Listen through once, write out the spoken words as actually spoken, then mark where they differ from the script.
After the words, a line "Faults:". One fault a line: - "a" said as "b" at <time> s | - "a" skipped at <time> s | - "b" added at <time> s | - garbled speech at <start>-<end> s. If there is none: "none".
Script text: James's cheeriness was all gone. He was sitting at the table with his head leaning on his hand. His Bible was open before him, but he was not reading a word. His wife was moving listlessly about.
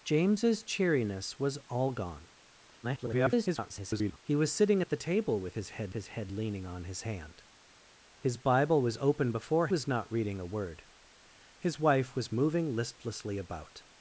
James's cheeriness was all gone. [garbled] He was sitting at the table with his head his head leaning on his hand. His Bible was open before was not reading a word. His wife was moving listlessly about.
Faults:
- garbled speech at 2.8-4.2 s
- "his head" added at 5.9 s
- "him but he" skipped at 9.7 s